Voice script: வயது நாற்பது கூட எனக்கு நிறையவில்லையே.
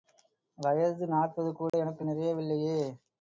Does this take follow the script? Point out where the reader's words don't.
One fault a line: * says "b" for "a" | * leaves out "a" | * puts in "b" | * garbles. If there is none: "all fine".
all fine